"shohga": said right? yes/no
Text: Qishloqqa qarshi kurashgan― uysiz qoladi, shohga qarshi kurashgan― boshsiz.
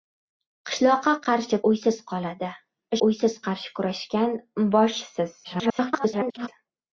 no